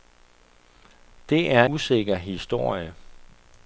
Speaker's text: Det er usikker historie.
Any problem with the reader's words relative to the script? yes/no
no